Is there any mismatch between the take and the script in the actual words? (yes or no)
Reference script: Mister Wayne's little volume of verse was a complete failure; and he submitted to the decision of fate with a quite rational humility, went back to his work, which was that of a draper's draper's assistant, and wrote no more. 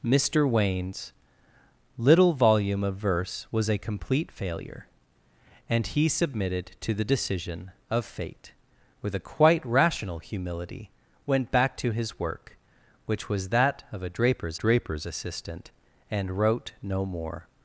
no